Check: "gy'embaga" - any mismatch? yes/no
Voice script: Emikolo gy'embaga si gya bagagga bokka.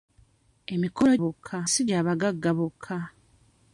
yes